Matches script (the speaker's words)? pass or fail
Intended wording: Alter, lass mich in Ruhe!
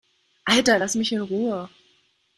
pass